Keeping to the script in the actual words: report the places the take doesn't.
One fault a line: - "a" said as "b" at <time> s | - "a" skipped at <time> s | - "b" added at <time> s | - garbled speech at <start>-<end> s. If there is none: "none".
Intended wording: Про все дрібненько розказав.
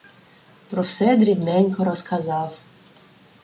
none